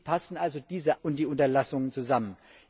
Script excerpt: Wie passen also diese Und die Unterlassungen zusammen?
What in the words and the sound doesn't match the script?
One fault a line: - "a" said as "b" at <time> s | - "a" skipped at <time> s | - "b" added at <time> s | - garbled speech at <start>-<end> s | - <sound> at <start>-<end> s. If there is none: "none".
none